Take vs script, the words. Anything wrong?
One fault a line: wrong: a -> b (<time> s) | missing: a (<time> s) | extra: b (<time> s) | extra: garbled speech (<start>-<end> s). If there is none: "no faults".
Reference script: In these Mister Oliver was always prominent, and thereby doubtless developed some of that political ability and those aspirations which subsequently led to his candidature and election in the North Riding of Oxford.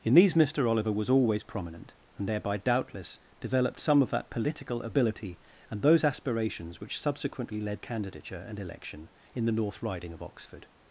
missing: to his (7.8 s)